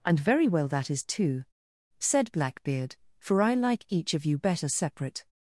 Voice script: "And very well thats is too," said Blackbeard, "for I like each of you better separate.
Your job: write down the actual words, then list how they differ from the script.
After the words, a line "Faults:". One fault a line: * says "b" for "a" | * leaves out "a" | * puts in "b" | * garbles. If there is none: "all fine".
"And very well that is too," said Blackbeard, "for I like each of you better separate.
Faults:
* says "that" for "thats"